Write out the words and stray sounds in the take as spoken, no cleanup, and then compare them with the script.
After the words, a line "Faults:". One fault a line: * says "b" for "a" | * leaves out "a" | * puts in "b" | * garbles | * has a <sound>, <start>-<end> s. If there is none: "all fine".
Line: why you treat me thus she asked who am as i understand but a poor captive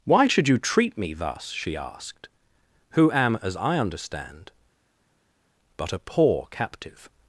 why should you treat me thus she asked who am as i understand but a poor captive
Faults:
* puts in "should"